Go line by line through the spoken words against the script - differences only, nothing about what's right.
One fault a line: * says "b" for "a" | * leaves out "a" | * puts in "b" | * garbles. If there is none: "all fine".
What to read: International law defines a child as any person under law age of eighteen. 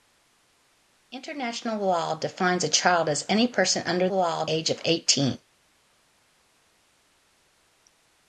all fine